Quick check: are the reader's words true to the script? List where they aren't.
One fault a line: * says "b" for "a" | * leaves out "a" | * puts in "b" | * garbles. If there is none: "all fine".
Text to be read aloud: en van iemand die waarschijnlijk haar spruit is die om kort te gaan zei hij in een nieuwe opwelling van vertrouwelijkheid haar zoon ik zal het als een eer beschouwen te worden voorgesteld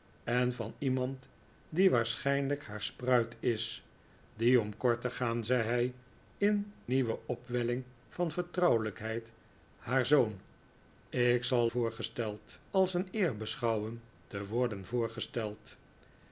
* leaves out "een"
* says "voorgesteld" for "het"